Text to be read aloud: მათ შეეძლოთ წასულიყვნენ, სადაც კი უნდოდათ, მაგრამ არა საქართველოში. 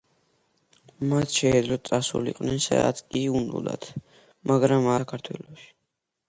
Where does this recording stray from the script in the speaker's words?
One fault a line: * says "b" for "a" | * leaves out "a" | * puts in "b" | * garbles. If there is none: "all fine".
* leaves out "არა"